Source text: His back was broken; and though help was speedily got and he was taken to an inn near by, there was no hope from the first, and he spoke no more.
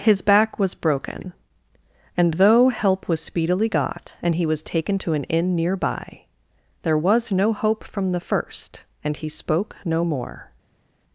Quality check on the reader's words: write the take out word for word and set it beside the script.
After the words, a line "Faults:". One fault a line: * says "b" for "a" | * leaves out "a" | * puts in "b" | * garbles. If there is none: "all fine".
His back was broken; and though help was speedily got and he was taken to an inn near by, there was no hope from the first, and he spoke no more.
Faults:
all fine